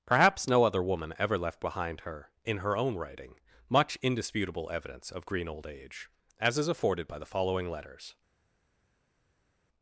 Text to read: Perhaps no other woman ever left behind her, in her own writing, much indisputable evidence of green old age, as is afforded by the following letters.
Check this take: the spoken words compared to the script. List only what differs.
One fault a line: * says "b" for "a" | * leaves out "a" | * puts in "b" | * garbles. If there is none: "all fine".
all fine